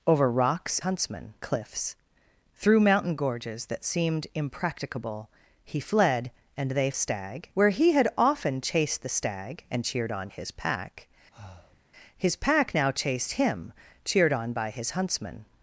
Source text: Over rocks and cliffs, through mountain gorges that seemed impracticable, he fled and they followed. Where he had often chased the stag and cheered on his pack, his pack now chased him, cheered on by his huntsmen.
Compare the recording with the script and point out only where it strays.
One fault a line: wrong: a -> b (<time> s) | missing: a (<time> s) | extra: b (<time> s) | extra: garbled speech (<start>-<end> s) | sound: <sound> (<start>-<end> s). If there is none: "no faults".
wrong: and -> huntsmen (0.8 s)
wrong: followed -> stag (6.9 s)
sound: breath (11.3-11.8 s)